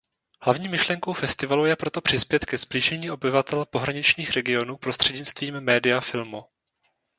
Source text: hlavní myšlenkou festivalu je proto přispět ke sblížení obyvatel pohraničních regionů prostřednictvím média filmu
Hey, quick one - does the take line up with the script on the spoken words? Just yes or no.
yes